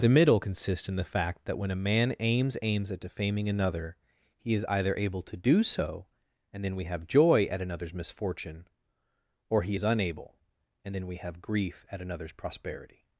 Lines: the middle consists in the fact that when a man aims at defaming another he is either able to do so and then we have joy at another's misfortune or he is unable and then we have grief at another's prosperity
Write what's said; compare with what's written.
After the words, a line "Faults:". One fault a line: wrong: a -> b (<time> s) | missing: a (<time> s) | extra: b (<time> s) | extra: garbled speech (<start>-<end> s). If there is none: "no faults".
the middle consists in the fact that when a man aims aims at defaming another he is either able to do so and then we have joy at another's misfortune or he is unable and then we have grief at another's prosperity
Faults:
extra: aims (2.6 s)